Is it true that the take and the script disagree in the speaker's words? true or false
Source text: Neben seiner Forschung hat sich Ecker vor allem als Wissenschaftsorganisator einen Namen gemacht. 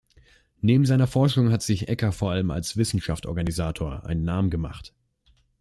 false